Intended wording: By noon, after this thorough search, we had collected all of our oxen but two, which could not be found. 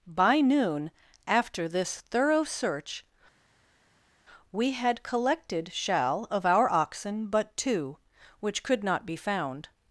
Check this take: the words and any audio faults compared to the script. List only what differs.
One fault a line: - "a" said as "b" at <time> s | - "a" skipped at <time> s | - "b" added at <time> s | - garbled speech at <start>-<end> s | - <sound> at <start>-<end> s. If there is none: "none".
- "all" said as "shall" at 5.7 s